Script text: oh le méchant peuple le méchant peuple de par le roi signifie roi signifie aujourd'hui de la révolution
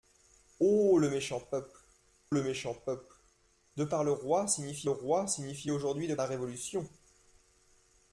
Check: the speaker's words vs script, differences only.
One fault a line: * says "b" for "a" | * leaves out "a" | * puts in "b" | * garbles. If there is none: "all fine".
all fine